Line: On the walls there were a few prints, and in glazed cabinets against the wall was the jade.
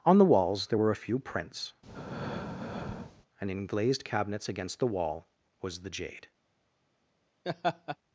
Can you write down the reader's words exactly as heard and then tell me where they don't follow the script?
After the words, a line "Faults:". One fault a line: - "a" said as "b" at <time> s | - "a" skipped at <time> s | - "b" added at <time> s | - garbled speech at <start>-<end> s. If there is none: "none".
On the walls there were a few prints, and in glazed cabinets against the wall was the jade.
Faults:
none